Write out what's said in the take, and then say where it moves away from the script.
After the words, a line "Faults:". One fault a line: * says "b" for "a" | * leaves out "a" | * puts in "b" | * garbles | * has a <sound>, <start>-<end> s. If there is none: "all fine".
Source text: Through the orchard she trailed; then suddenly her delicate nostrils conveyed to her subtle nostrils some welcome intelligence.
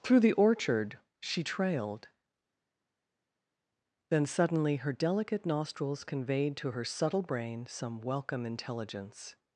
Through the orchard she trailed; then suddenly her delicate nostrils conveyed to her subtle brain some welcome intelligence.
Faults:
* says "brain" for "nostrils"